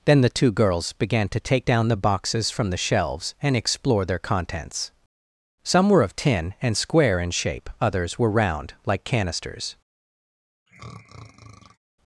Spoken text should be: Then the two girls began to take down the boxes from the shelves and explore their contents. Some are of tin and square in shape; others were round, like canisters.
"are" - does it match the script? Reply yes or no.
no